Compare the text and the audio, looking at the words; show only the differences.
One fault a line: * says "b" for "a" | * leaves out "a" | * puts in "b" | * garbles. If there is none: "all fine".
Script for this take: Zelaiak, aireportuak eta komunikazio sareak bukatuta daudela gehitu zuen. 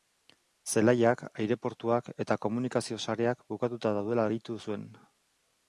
all fine